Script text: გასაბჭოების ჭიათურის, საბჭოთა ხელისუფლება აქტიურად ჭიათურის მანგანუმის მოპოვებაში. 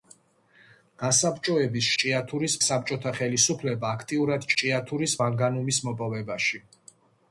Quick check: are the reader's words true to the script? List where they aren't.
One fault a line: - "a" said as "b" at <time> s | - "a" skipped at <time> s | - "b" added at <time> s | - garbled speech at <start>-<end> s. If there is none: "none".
none